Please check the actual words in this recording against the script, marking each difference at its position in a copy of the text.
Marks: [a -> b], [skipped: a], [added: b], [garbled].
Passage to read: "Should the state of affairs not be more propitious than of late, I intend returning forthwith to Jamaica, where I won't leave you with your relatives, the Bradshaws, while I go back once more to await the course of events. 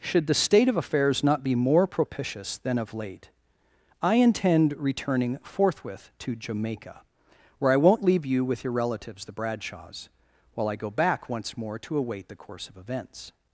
"Should the state of affairs not be more propitious than of late, I intend returning forthwith to Jamaica, where I won't leave you with your relatives, the Bradshaws, while I go back once more to await the course of events.